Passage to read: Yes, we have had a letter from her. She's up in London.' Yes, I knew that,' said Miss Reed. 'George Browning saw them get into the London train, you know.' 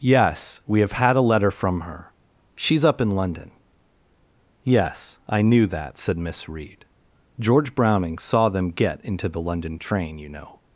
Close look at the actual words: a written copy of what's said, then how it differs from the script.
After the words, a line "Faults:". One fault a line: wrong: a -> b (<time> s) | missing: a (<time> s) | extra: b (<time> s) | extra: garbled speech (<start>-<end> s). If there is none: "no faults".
Yes, we have had a letter from her. She's up in London.' Yes, I knew that,' said Miss Reed. 'George Browning saw them get into the London train, you know.'
Faults:
no faults